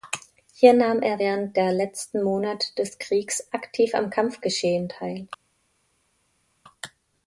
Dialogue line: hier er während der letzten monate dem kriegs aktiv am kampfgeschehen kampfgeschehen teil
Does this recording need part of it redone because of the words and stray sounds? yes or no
yes